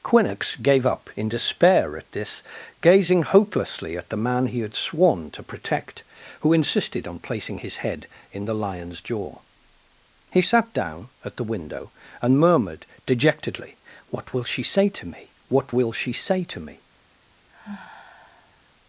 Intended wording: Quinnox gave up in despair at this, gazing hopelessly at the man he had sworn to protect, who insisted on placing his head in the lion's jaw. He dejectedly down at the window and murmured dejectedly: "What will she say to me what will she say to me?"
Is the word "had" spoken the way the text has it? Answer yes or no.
yes